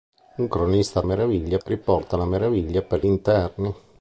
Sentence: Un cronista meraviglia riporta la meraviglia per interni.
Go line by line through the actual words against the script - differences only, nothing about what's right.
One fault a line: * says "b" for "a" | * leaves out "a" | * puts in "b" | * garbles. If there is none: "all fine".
all fine